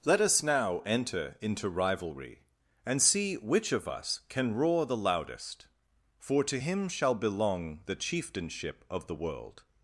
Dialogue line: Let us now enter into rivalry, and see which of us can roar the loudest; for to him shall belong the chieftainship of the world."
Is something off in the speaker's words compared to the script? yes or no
no